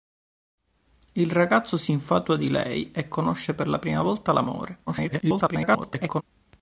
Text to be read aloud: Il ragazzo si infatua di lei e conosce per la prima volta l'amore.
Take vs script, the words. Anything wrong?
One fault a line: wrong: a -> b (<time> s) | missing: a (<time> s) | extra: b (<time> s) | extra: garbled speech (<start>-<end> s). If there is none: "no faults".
extra: garbled speech (4.9-6.2 s)